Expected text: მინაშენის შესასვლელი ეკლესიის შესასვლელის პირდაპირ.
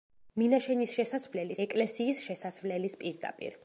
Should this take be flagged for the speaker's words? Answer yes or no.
no